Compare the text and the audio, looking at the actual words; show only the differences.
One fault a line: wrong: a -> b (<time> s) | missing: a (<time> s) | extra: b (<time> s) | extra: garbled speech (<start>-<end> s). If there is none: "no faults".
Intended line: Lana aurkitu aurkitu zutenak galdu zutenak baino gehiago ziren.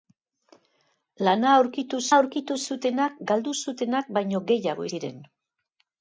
no faults